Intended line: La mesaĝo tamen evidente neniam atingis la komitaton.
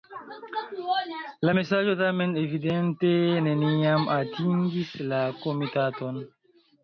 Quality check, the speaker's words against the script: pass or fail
pass